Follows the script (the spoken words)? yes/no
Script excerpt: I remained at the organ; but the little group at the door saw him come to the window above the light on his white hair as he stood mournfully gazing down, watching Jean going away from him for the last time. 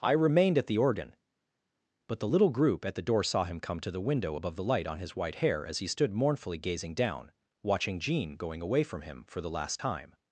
yes